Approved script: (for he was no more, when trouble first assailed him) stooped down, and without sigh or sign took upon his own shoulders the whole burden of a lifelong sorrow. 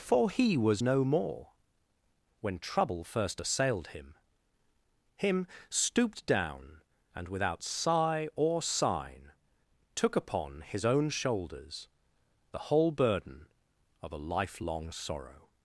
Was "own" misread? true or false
false